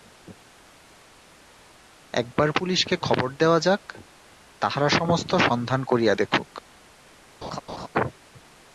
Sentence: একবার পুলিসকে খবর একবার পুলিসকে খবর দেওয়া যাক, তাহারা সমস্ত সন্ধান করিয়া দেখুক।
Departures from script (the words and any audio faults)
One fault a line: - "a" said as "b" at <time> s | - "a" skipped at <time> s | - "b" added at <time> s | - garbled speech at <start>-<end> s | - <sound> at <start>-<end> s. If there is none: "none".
- "একবার পুলিসকে খবর" skipped at 3.3 s
- laugh at 7.4-7.9 s